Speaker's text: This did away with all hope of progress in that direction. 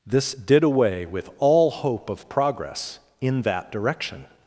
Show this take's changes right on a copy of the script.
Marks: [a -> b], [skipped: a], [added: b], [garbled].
This did away with all hope of progress in that direction.